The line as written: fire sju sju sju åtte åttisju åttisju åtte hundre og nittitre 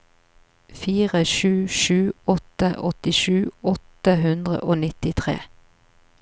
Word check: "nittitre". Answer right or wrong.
right